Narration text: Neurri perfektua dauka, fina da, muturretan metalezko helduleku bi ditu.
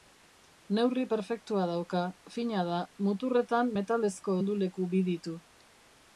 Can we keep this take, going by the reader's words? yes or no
yes